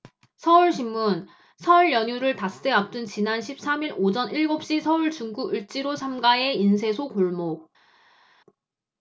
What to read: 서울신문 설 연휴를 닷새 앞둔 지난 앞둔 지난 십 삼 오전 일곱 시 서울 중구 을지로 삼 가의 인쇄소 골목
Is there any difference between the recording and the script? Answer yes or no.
yes